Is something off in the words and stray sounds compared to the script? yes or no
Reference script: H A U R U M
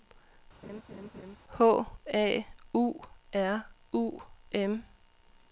yes